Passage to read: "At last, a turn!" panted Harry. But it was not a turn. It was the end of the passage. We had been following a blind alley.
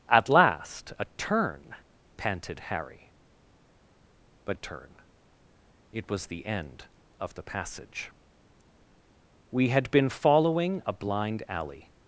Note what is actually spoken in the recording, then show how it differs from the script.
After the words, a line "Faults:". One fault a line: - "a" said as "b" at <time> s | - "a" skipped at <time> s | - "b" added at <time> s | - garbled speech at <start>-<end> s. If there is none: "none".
"At last, a turn!" panted Harry. But a turn. It was the end of the passage. We had been following a blind alley.
Faults:
- "it was not" skipped at 4.6 s